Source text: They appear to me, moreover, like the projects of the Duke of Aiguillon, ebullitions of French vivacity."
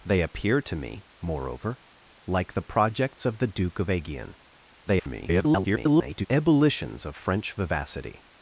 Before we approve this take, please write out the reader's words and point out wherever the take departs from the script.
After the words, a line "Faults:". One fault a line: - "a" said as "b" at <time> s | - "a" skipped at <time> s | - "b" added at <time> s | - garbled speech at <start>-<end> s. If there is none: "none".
They appear to me, moreover, like the projects of the Duke of Aiguillon, [garbled] ebullitions of French vivacity."
Faults:
- garbled speech at 4.9-6.3 s